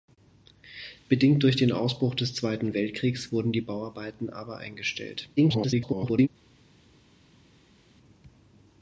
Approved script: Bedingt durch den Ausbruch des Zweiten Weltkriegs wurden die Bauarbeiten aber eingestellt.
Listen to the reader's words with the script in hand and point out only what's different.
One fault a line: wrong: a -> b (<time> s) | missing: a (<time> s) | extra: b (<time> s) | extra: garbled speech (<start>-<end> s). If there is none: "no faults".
extra: garbled speech (5.4-6.3 s)